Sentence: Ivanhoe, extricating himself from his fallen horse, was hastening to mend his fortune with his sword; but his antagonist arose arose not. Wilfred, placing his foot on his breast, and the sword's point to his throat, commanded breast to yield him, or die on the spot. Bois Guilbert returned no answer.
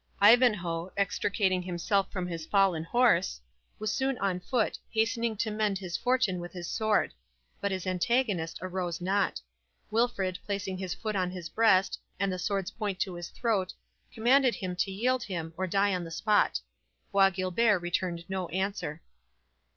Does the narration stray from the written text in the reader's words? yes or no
yes